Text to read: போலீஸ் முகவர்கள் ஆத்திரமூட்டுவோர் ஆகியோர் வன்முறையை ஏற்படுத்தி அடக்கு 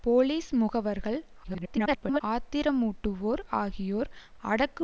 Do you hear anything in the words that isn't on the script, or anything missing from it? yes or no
yes